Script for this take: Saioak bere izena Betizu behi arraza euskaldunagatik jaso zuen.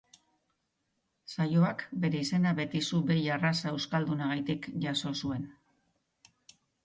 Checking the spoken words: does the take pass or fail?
pass